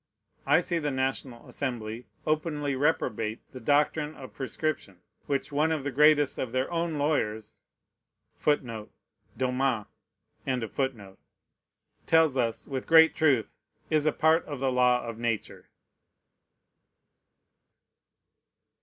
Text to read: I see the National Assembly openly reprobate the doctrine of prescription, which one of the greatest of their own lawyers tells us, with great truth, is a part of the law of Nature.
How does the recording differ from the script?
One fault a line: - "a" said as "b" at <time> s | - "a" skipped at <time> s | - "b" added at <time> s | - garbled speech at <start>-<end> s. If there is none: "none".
none